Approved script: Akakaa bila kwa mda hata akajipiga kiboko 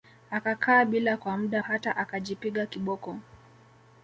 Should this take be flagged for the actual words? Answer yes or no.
no